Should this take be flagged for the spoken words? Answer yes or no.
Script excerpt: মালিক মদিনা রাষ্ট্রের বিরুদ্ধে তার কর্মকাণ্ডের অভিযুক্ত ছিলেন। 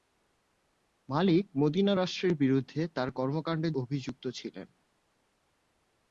no